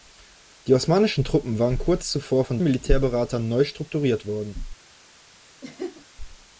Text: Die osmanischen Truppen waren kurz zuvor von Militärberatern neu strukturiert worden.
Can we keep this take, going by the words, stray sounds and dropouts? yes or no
no